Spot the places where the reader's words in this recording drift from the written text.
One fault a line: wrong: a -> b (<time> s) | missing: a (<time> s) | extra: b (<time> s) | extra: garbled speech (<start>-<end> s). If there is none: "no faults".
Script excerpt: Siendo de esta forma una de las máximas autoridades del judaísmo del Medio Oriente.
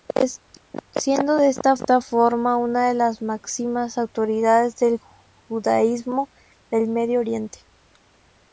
extra: esta (1.7 s)